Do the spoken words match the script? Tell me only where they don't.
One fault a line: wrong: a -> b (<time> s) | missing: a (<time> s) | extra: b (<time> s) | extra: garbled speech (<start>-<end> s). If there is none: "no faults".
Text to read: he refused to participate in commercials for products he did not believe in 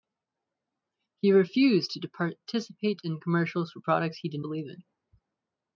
missing: not (4.4 s)